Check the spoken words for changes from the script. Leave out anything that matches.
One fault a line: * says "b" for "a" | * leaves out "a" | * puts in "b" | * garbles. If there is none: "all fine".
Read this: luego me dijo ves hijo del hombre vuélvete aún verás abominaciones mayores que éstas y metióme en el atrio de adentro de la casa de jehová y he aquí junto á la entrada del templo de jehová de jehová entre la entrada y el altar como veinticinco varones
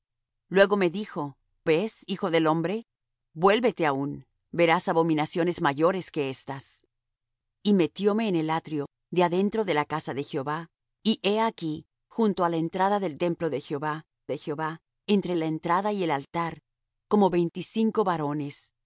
all fine